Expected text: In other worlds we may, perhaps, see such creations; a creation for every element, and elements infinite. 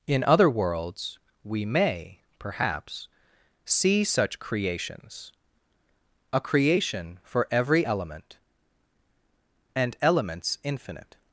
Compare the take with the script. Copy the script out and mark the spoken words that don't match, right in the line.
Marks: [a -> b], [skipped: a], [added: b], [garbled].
In other worlds we may, perhaps, see such creations; a creation for every element, and elements infinite.